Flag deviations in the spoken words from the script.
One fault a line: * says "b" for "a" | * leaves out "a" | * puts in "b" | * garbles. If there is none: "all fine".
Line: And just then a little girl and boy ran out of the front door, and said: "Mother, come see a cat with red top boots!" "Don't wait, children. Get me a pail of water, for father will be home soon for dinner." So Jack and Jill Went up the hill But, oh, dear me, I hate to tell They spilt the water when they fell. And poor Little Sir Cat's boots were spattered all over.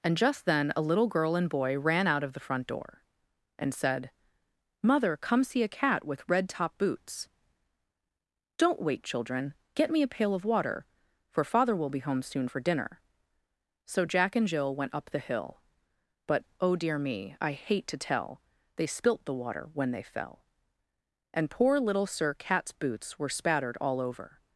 all fine